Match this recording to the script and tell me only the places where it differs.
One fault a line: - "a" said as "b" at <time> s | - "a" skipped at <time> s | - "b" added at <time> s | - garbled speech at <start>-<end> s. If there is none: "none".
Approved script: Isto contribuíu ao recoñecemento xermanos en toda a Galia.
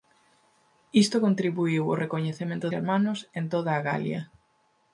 none